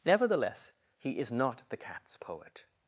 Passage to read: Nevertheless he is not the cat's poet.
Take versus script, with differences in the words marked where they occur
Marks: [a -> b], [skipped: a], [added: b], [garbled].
Nevertheless he is not the cat's poet.